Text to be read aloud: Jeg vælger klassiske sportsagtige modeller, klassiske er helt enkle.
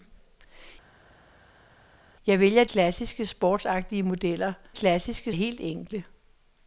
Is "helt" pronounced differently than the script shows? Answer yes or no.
no